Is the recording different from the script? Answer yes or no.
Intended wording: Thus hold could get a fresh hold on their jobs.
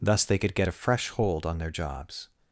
yes